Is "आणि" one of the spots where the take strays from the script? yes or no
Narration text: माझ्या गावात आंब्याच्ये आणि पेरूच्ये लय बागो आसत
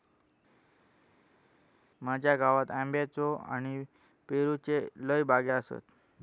no